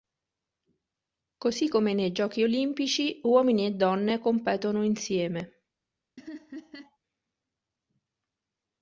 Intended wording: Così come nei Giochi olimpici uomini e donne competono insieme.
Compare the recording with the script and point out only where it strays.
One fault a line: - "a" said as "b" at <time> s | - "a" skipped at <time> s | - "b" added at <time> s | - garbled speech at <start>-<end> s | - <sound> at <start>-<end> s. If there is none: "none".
- laugh at 6.2-7.0 s